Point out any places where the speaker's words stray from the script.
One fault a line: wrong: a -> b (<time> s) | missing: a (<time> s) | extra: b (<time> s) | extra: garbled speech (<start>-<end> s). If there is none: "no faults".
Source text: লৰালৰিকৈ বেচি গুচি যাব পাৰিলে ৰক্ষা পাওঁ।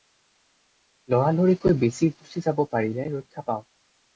no faults